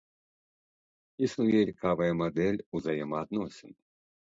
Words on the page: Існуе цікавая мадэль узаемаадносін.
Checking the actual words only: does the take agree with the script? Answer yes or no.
yes